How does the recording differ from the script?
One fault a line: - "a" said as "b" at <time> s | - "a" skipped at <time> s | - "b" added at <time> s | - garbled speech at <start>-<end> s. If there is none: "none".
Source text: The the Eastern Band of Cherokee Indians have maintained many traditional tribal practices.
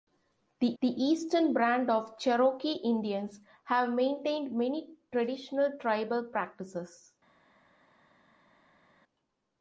none